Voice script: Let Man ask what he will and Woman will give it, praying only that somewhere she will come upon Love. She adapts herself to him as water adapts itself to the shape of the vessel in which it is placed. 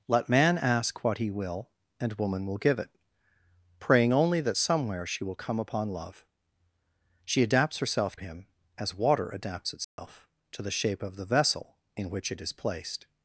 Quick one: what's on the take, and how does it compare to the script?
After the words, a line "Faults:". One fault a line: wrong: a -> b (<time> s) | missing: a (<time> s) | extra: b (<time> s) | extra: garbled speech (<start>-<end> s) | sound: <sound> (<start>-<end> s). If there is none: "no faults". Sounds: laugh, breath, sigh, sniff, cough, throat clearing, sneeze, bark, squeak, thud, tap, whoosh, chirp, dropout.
Let Man ask what he will and Woman will give it, praying only that somewhere she will come upon Love. She adapts herself him as water adapts itself to the shape of the vessel in which it is placed.
Faults:
missing: to (8.2 s)
sound: dropout (9.8-10.0 s)